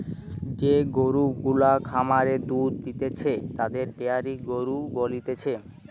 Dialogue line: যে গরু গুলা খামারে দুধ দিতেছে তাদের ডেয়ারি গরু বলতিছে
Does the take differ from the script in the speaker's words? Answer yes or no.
no